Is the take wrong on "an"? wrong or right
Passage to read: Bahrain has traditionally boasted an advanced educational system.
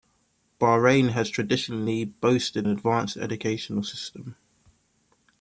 wrong